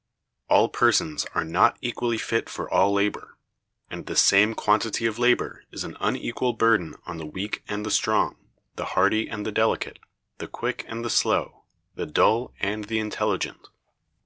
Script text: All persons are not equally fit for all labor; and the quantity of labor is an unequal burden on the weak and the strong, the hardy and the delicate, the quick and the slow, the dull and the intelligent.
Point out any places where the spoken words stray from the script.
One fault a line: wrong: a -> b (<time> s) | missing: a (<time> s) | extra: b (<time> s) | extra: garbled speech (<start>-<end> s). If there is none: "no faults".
extra: same (4.1 s)